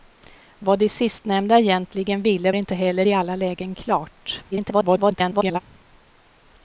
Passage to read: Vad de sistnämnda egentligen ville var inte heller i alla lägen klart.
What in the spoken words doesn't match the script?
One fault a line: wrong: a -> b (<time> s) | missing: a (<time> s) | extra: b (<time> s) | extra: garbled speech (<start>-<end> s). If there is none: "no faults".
missing: var (2.5 s)
extra: garbled speech (4.5-5.6 s)